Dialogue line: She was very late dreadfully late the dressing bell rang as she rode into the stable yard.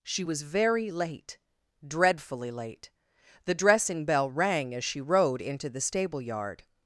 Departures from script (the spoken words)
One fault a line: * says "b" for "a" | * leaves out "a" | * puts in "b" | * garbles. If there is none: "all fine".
all fine